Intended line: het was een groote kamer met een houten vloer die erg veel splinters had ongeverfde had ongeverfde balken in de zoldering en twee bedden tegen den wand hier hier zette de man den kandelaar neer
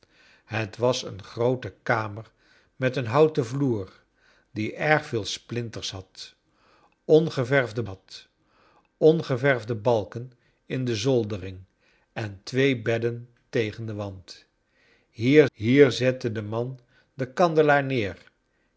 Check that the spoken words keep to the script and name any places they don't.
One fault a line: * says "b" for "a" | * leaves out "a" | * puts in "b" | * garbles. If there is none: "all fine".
all fine